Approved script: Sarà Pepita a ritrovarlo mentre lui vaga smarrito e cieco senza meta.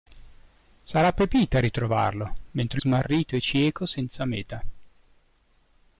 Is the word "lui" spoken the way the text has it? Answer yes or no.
no